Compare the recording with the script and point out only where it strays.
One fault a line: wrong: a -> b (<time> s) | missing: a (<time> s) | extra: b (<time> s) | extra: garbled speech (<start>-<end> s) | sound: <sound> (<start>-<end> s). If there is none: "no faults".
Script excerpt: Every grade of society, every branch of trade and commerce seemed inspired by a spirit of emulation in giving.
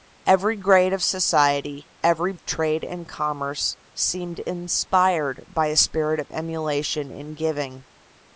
missing: branch (2.3 s)